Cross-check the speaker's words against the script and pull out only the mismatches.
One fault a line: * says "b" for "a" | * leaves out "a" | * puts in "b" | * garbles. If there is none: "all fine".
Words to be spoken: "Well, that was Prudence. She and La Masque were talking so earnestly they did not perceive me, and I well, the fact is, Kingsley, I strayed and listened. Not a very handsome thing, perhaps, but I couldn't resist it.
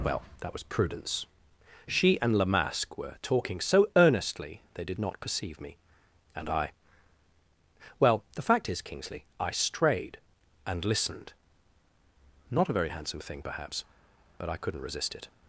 all fine